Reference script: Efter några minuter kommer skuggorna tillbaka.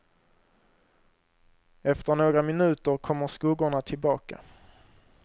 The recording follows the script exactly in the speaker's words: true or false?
true